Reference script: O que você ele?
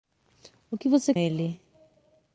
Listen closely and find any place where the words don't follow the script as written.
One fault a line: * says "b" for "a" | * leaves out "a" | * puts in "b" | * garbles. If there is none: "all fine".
all fine